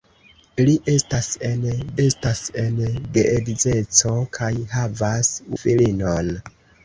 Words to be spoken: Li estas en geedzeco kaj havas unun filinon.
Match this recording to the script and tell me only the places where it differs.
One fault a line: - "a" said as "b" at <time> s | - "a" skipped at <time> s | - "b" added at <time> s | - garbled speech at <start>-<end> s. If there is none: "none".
- "estas en" added at 2.0 s
- "unun" skipped at 5.4 s